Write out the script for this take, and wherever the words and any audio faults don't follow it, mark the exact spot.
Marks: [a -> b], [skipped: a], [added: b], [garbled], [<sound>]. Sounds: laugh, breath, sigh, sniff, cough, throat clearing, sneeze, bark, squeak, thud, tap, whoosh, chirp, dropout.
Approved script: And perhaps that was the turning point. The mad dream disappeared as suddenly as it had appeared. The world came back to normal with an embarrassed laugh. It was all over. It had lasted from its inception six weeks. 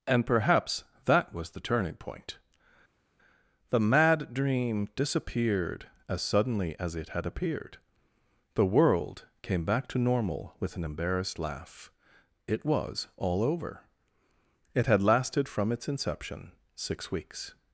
And perhaps that was the turning point. The mad dream disappeared as suddenly as it had appeared. The world came back to normal with an embarrassed laugh. It was all over. It had lasted from its inception six weeks.